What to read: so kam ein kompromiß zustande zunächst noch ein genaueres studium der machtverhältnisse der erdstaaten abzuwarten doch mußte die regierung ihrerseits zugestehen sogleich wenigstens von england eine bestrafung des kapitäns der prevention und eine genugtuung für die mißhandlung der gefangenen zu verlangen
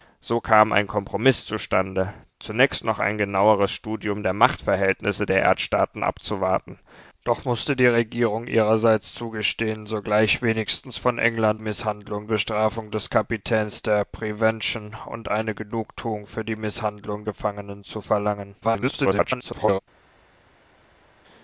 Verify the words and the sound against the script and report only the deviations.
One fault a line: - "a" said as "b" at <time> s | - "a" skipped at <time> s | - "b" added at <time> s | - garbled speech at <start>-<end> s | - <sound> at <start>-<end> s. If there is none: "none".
- "eine" said as "mißhandlung" at 11.6 s
- "der" skipped at 17.2 s
- garbled speech at 18.6-19.8 s